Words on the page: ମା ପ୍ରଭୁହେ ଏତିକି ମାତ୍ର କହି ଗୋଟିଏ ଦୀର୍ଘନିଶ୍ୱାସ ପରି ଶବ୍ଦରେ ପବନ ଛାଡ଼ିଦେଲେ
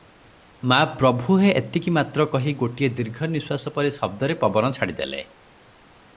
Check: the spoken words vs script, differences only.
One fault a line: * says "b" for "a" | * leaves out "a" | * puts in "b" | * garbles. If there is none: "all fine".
all fine